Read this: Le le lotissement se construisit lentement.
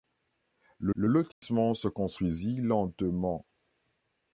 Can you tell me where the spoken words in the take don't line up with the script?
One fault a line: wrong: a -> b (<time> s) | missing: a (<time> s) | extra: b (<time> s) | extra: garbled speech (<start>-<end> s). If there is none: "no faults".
no faults